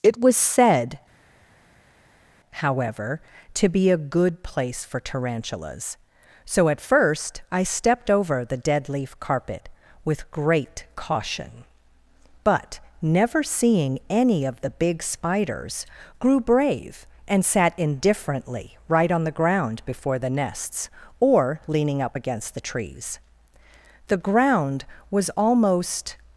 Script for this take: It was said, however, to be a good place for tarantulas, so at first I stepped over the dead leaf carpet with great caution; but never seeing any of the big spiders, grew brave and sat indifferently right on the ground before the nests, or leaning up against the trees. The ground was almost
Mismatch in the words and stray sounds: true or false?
false